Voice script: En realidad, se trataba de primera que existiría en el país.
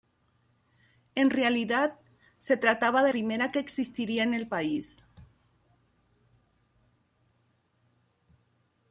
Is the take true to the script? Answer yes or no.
yes